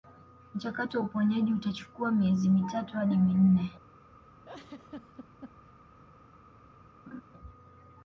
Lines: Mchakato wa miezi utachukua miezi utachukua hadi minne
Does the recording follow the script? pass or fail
fail